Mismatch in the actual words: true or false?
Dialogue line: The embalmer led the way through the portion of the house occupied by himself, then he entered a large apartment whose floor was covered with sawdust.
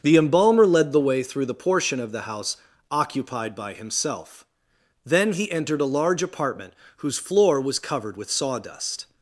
false